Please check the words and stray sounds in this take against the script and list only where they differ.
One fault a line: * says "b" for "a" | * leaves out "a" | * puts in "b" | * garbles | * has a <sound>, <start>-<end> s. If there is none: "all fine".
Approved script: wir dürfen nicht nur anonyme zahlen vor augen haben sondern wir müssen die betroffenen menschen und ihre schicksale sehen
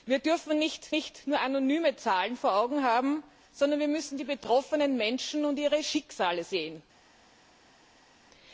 * puts in "nicht"